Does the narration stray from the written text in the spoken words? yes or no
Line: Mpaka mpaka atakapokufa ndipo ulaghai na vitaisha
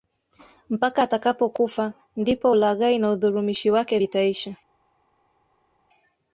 yes